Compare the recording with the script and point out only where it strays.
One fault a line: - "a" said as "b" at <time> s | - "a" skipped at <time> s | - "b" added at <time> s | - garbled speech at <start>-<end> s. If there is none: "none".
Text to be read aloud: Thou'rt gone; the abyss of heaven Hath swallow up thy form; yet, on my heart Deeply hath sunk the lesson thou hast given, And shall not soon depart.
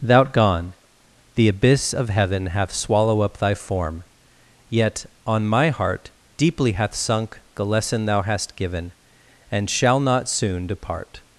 none